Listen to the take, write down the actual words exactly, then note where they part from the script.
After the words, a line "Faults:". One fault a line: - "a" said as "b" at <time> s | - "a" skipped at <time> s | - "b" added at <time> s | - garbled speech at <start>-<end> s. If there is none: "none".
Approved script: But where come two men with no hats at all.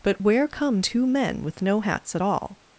But where come two men with no hats at all.
Faults:
none